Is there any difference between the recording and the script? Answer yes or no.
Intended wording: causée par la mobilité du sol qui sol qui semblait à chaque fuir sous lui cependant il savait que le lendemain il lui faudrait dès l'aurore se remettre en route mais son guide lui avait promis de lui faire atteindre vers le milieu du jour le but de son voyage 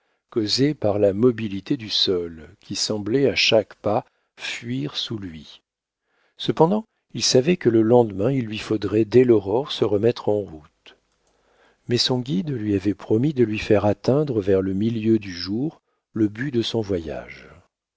yes